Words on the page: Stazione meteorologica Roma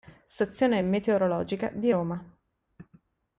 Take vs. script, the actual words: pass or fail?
fail